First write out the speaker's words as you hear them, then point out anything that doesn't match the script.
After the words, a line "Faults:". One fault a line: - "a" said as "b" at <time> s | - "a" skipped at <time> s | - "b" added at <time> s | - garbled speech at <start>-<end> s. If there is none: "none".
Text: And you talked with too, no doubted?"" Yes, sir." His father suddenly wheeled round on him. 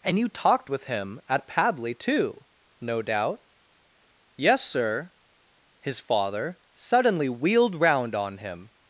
And you talked with him at Padley, too, no doubt?"" Yes, sir." His father suddenly wheeled round on him.
Faults:
- "him at Padley" added at 0.9 s
- "doubted" said as "doubt" at 3.0 s